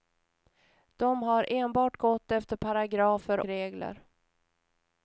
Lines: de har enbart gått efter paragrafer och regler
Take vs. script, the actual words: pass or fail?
fail